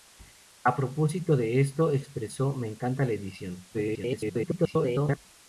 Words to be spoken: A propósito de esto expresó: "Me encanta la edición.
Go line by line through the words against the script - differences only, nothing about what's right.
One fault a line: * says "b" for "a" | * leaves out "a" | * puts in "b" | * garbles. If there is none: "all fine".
* garbles